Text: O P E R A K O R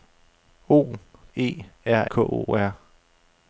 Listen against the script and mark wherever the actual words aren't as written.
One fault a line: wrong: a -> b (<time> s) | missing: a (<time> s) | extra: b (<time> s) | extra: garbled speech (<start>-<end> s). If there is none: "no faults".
missing: P (0.9 s)
missing: A (2.1 s)